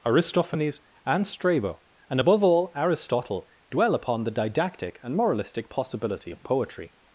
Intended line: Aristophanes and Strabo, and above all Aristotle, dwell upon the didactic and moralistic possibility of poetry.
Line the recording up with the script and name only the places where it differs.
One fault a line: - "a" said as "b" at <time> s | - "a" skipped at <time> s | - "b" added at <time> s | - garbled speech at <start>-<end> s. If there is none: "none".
none